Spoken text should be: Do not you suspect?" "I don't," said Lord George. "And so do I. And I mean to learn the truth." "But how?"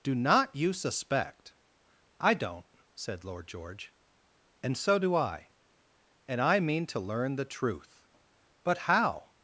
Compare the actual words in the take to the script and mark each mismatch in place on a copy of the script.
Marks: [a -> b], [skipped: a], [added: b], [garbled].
Do not you suspect?" "I don't," said Lord George. "And so do I. And I mean to learn the truth." "But how?"